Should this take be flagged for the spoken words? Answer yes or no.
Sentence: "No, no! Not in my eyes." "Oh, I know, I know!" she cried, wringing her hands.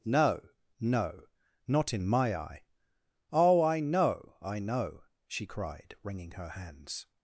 yes